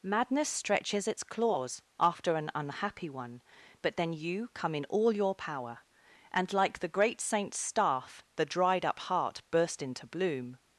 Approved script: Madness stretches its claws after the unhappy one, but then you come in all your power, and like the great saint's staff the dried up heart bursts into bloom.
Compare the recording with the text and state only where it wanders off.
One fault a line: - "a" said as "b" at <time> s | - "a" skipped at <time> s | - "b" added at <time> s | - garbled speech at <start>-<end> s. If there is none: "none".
- "the" said as "an" at 2.4 s
- "bursts" said as "burst" at 9.5 s